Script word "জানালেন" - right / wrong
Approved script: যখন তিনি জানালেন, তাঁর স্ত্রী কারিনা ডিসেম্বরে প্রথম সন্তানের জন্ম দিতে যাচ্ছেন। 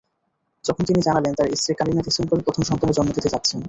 right